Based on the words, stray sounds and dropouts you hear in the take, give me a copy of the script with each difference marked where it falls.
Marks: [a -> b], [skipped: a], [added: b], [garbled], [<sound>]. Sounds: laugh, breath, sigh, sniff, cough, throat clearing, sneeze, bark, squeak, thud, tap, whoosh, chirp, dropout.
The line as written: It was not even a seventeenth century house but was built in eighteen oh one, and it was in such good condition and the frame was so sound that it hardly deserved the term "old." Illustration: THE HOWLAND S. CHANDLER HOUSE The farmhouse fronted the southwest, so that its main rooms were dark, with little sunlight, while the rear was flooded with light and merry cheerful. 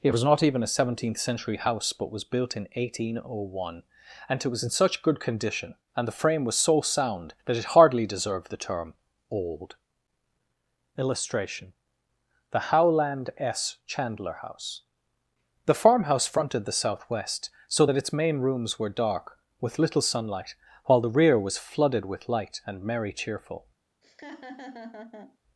It was not even a seventeenth century house but was built in eighteen oh one, and it was in such good condition and the frame was so sound that it hardly deserved the term "old." Illustration: THE HOWLAND S. CHANDLER HOUSE The farmhouse fronted the southwest, so that its main rooms were dark, with little sunlight, while the rear was flooded with light and merry cheerful. [laugh]